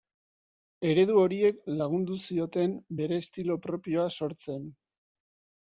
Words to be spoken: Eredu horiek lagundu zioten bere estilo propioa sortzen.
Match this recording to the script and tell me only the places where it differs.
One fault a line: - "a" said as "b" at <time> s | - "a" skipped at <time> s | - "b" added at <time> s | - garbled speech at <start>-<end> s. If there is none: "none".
none